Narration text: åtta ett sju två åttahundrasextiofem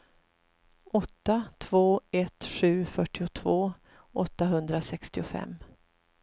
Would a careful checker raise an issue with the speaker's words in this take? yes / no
yes